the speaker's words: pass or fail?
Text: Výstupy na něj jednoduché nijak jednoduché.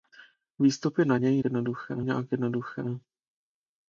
pass